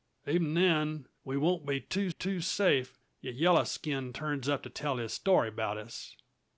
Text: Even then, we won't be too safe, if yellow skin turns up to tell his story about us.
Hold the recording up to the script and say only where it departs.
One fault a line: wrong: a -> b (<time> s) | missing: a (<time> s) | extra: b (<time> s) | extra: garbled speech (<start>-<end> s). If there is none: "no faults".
extra: too (2.1 s)